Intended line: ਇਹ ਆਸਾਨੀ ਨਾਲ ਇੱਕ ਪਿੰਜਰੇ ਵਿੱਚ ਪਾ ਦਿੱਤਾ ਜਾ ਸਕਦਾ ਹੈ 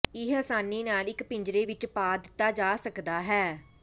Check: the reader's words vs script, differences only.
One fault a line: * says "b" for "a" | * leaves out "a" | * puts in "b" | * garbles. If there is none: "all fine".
all fine